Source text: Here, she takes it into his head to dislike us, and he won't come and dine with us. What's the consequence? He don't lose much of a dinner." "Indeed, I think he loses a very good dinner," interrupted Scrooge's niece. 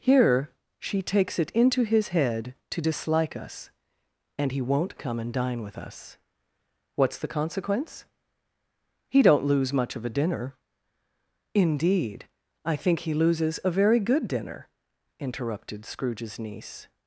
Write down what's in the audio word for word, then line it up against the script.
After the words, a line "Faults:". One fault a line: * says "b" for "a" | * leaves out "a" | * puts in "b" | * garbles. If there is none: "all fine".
Here, she takes it into his head to dislike us, and he won't come and dine with us. What's the consequence? He don't lose much of a dinner." "Indeed, I think he loses a very good dinner," interrupted Scrooge's niece.
Faults:
all fine